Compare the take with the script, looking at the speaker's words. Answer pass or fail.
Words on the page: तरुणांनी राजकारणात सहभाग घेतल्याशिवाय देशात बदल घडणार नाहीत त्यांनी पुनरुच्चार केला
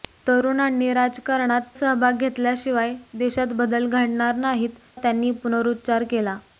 pass